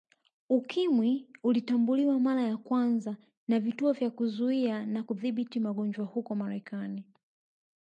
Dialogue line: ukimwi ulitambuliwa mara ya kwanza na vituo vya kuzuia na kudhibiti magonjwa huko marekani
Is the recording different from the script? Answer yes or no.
no